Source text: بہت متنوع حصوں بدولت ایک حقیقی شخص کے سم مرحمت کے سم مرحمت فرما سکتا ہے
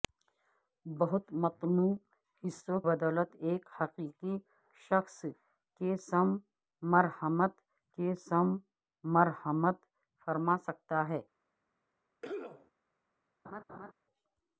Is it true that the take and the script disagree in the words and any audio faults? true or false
true